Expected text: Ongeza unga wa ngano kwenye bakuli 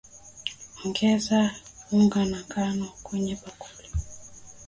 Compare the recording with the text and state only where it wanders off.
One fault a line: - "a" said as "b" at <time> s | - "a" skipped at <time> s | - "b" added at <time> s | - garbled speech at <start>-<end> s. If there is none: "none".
none